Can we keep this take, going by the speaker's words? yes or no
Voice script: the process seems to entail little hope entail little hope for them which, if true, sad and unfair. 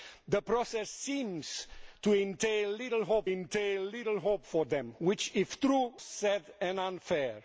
yes